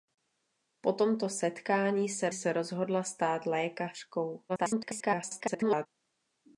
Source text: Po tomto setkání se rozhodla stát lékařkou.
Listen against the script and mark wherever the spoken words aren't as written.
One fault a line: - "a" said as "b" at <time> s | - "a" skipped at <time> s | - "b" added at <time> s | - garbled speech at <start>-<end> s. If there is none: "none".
- "se" added at 2.3 s
- garbled speech at 4.5-5.9 s